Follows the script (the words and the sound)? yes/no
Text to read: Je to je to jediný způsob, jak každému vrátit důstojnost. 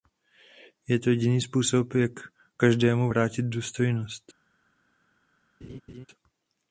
no